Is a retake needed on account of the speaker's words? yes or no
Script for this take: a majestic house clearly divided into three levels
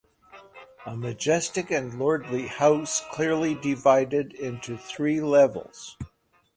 yes